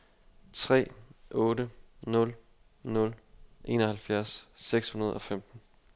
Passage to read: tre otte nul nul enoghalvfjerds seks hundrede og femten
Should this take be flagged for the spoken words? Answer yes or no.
no